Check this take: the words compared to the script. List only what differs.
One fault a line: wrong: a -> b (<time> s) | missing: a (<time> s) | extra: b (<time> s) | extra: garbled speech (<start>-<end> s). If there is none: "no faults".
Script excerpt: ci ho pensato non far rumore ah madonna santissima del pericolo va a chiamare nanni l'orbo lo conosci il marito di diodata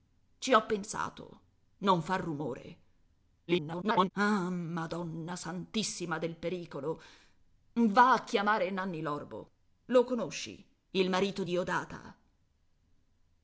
extra: garbled speech (3.5-4.1 s)
missing: di (11.4 s)